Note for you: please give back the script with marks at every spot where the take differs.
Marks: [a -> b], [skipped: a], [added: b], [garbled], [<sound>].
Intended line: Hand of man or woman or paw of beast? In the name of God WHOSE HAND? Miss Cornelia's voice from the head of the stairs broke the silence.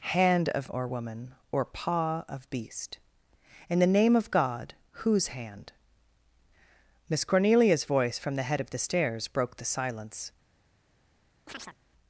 Hand of [skipped: man] or woman or paw of beast? In the name of God WHOSE HAND? Miss Cornelia's voice from the head of the stairs broke the silence. [chirp]